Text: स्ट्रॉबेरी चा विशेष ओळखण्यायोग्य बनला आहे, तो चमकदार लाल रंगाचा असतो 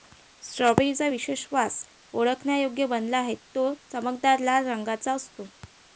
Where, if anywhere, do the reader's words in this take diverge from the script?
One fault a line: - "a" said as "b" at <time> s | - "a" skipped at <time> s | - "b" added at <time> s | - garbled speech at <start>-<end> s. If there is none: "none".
- "वास" added at 1.5 s